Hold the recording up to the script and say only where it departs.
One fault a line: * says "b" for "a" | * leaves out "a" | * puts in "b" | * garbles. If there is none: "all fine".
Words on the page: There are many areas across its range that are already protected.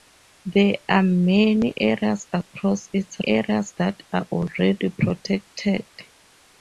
* says "areas" for "range"